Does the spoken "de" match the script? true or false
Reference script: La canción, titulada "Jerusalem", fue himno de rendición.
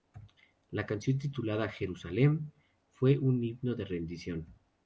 true